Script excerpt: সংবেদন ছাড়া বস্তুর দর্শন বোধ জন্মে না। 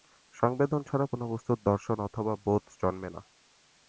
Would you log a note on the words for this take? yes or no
yes